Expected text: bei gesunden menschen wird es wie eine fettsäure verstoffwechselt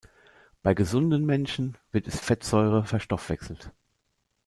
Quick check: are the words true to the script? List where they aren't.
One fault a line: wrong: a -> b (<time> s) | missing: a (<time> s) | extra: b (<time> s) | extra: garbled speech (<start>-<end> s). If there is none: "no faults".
missing: wie eine (2.2 s)